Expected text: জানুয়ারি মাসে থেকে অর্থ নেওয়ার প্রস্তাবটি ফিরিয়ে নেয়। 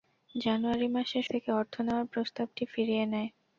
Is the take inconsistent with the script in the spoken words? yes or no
no